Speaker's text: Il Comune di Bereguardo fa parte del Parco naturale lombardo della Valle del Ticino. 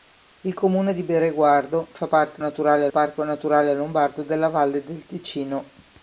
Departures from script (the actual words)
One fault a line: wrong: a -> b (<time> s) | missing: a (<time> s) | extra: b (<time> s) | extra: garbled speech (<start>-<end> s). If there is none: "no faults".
wrong: del -> naturale (2.4 s)